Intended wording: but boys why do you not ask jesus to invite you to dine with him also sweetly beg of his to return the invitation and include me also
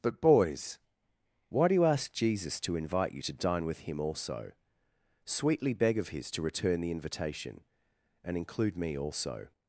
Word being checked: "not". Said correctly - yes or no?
no